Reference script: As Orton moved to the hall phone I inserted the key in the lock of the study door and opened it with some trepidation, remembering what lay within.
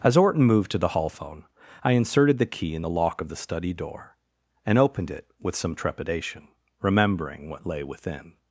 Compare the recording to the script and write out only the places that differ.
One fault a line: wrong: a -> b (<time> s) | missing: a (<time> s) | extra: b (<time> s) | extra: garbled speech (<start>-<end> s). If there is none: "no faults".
no faults